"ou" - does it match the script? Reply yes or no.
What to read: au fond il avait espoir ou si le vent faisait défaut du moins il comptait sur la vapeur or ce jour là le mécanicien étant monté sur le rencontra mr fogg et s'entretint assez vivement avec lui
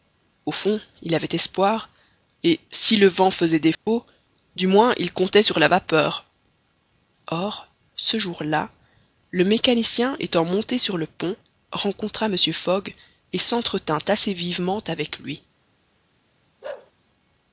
no